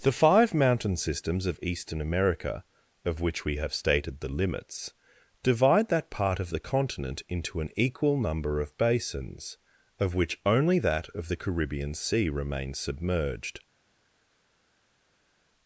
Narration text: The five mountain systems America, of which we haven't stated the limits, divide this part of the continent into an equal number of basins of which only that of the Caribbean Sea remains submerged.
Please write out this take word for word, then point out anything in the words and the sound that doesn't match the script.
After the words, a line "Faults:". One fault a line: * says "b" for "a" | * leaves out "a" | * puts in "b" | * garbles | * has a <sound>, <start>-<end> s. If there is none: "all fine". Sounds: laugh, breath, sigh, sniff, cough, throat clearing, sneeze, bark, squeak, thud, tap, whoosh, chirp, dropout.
The five mountain systems of eastern America, of which we have stated the limits, divide that part of the continent into an equal number of basins of which only that of the Caribbean Sea remains submerged.
Faults:
* puts in "of eastern"
* says "have" for "haven't"
* says "that" for "this"